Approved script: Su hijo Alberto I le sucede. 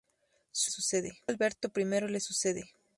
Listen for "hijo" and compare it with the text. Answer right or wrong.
wrong